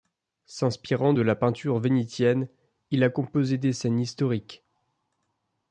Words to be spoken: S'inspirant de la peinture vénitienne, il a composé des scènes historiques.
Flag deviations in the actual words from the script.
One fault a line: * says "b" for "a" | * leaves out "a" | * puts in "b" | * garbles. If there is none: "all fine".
all fine